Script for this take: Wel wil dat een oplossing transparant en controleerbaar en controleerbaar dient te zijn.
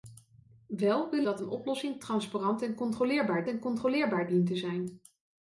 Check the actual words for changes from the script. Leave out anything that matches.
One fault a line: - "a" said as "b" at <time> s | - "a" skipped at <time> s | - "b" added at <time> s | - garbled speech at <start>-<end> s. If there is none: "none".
none